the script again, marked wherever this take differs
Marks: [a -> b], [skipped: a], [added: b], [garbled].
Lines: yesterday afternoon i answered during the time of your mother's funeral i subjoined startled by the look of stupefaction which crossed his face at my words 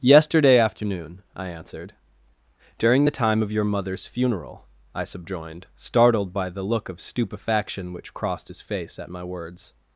yesterday afternoon i answered during the time of your mother's funeral i subjoined startled by the look of stupefaction which crossed his face at my words